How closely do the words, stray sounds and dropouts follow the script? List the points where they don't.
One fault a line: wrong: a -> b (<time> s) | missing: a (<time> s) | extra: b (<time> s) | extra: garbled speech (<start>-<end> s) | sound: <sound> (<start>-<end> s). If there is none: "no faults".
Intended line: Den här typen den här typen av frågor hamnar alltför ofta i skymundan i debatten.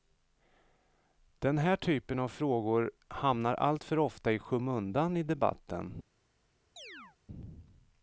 missing: den här typen (2.2 s)
sound: chirp (6.8-7.2 s)